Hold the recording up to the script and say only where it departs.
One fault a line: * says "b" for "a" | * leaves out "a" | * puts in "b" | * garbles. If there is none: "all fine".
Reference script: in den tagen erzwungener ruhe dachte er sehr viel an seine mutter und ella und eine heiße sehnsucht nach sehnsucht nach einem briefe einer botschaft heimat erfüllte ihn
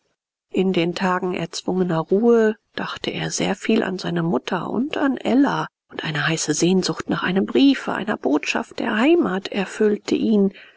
* puts in "an"
* leaves out "sehnsucht nach"
* puts in "der"